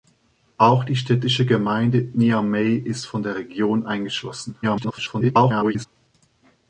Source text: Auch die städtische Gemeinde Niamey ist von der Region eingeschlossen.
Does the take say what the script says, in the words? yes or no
no